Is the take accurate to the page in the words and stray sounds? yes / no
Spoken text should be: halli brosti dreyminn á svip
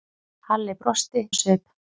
no